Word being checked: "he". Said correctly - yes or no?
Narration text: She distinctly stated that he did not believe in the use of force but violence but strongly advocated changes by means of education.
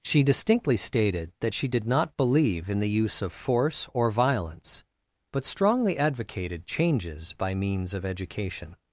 no